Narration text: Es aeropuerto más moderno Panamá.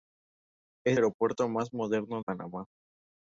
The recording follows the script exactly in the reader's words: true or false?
true